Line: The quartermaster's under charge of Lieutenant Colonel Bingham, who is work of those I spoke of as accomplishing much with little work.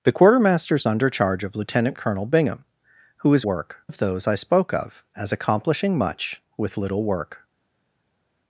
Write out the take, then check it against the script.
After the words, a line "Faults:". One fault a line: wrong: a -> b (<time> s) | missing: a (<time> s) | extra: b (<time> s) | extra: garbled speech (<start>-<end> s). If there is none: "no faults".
The quartermaster's under charge of Lieutenant Colonel Bingham, who is work of those I spoke of as accomplishing much with little work.
Faults:
no faults